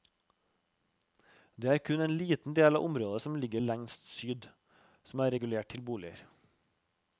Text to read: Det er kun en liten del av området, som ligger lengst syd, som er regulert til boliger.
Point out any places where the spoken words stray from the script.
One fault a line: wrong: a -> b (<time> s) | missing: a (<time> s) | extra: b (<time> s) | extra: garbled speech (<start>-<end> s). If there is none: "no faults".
no faults